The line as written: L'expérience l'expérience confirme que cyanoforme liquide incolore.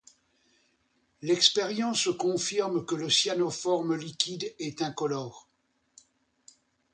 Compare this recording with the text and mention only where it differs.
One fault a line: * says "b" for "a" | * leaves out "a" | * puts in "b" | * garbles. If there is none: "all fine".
* leaves out "l'expérience"
* puts in "le"
* puts in "est"